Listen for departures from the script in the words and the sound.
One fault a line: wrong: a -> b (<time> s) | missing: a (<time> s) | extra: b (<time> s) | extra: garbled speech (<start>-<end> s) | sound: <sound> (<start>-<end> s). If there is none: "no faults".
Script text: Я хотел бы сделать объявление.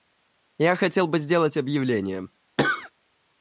sound: cough (2.6-2.9 s)